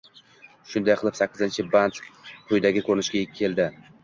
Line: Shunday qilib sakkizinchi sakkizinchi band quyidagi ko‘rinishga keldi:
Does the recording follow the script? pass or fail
fail